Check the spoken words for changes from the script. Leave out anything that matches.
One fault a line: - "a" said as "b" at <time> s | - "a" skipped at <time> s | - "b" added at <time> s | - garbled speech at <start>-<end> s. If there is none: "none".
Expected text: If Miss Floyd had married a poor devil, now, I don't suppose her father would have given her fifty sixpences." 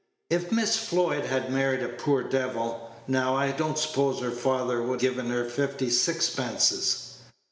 - "have" skipped at 5.0 s